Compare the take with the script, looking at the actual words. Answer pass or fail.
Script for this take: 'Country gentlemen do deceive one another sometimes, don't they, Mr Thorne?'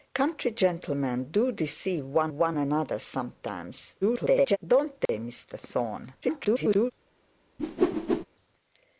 fail